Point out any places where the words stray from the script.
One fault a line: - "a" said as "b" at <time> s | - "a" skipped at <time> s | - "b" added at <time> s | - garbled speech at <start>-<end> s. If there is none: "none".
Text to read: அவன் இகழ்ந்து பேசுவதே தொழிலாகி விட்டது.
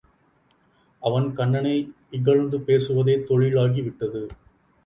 - "கண்ணனை" added at 1.3 s